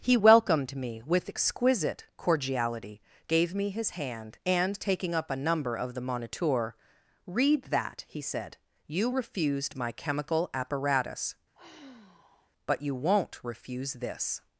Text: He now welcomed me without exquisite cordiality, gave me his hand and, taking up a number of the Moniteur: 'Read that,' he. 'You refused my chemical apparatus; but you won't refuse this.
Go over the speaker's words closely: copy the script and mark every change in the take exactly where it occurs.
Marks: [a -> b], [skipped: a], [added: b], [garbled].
He [skipped: now] welcomed me [without -> with] exquisite cordiality, gave me his hand and, taking up a number of the Moniteur: 'Read that,' he. [added: said] 'You refused my chemical apparatus; but you won't refuse this.